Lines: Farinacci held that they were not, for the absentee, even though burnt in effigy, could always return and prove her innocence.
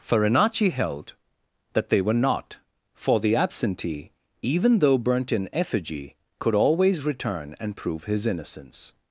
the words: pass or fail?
fail